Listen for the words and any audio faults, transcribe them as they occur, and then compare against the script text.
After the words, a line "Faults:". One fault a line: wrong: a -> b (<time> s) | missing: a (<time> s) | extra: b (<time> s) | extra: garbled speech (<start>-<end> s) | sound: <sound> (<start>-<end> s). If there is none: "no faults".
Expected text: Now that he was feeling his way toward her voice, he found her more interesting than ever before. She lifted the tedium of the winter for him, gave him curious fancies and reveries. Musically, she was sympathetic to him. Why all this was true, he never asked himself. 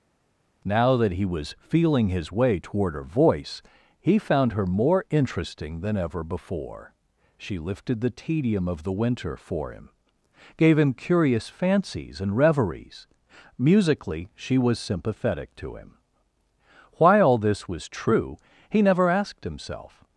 Now that he was feeling his way toward her voice, he found her more interesting than ever before. She lifted the tedium of the winter for him, gave him curious fancies and reveries. Musically, she was sympathetic to him. Why all this was true, he never asked himself.
Faults:
no faults